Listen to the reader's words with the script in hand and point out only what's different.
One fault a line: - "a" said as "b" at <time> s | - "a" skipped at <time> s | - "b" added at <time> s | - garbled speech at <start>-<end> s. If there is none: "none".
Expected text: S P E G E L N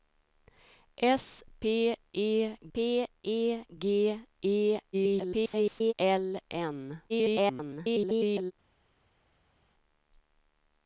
- "P E" added at 2.7 s
- garbled speech at 4.9-5.9 s
- garbled speech at 7.1-8.5 s